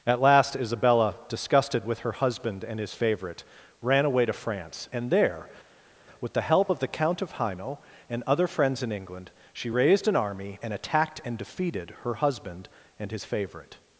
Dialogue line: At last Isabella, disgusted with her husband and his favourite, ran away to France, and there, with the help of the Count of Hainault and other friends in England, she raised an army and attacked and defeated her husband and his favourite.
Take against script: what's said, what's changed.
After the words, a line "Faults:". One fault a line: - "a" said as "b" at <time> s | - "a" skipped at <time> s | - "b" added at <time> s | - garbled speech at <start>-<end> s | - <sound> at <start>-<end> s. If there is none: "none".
At last Isabella, disgusted with her husband and his favourite, ran away to France, and there, with the help of the Count of Hainault and other friends in England, she raised an army and attacked and defeated her husband and his favourite.
Faults:
none